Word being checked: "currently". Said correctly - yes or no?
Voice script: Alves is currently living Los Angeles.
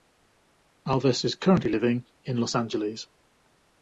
yes